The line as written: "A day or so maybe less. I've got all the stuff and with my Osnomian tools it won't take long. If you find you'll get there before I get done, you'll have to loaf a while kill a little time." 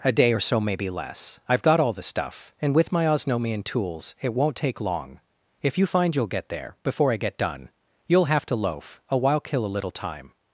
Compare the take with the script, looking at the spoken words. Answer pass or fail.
pass